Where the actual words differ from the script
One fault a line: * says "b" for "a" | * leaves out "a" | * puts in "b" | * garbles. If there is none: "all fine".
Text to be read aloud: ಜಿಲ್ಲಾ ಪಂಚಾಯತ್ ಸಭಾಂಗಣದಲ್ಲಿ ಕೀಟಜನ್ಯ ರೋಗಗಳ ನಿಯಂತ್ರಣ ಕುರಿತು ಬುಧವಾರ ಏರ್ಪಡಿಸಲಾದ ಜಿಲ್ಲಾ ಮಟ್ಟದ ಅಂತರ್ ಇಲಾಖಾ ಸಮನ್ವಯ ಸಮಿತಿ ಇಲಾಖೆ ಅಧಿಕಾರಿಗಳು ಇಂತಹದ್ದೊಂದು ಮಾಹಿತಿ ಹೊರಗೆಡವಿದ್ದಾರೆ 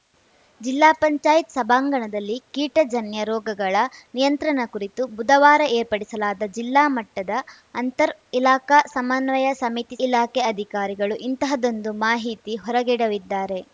all fine